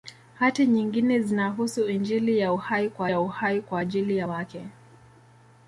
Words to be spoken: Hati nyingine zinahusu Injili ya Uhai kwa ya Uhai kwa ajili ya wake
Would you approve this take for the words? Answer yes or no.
yes